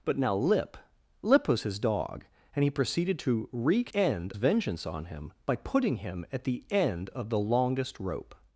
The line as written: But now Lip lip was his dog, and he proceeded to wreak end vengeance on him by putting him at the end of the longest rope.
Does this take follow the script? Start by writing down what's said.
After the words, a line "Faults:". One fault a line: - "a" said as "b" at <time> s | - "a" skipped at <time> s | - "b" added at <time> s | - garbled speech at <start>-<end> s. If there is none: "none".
But now Lip lip was his dog, and he proceeded to wreak end vengeance on him by putting him at the end of the longest rope.
Faults:
none